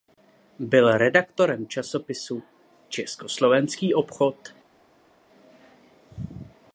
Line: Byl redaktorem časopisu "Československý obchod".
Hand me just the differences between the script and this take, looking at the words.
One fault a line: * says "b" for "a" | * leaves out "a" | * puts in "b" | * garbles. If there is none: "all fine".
all fine